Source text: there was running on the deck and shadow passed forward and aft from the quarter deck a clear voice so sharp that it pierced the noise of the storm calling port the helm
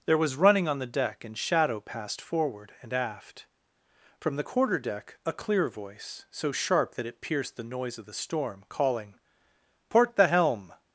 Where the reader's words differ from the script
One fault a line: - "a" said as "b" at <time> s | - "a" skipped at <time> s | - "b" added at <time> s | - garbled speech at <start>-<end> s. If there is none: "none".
none